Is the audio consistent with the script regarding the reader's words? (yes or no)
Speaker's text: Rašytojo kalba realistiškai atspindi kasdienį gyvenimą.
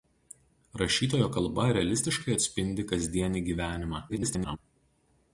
no